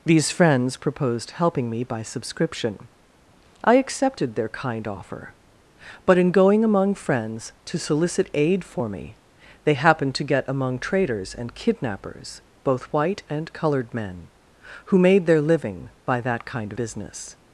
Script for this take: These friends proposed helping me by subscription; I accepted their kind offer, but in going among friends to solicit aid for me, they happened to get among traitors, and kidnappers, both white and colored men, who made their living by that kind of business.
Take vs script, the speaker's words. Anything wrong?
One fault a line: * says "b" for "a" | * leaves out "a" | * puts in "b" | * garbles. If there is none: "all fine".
* leaves out "of"